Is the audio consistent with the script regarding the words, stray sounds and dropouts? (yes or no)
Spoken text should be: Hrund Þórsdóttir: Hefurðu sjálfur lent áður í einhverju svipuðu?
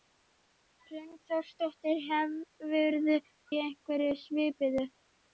no